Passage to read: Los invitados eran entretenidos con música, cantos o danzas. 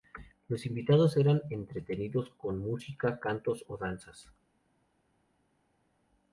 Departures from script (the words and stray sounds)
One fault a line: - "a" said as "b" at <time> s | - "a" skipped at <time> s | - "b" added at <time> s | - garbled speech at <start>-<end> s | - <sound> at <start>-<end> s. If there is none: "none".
none